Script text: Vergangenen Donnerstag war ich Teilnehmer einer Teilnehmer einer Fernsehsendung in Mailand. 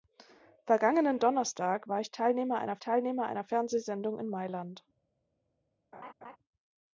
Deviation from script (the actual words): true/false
false